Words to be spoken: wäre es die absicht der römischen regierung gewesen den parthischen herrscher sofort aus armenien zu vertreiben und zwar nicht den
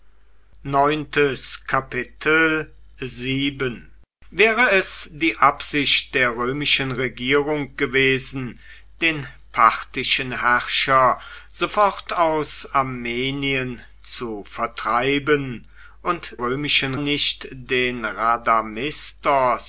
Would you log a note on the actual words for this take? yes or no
yes